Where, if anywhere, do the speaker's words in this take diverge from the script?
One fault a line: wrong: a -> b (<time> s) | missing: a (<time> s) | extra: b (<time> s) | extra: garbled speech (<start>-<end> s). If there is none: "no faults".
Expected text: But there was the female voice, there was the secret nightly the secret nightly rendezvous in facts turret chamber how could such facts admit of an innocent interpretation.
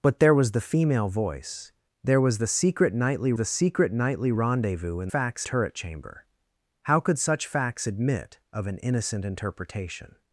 no faults